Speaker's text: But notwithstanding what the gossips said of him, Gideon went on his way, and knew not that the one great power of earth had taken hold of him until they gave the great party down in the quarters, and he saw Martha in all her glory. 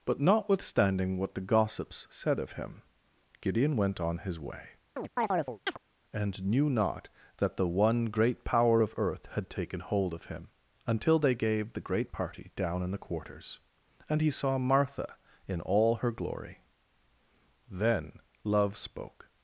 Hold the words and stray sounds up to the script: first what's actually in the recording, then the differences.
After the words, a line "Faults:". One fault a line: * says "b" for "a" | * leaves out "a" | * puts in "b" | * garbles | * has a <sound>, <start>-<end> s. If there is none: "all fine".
But notwithstanding what the gossips said of him, Gideon went on his way, and knew not that the one great power of earth had taken hold of him until they gave the great party down in the quarters, and he saw Martha in all her glory. Then love spoke
Faults:
* has a chirp, 5.0-5.8 s
* puts in "Then love spoke"